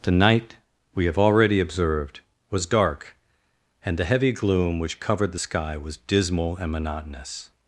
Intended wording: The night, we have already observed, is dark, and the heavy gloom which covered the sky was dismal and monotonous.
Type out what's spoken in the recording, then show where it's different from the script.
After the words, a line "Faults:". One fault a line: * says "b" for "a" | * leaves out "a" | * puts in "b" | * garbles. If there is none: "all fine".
The night, we have already observed, was dark, and the heavy gloom which covered the sky was dismal and monotonous.
Faults:
* says "was" for "is"